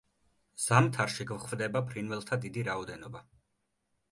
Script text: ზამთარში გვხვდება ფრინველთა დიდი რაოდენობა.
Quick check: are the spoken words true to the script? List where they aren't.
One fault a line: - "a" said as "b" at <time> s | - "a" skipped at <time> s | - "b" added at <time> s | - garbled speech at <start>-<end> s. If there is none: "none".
none